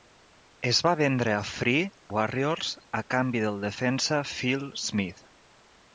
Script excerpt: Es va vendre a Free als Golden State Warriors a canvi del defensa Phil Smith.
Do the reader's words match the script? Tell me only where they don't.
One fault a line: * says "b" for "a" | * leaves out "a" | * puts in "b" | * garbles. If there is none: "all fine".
* leaves out "als Golden State"